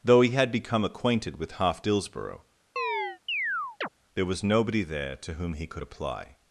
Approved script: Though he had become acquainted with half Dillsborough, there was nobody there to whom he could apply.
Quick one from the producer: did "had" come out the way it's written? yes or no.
yes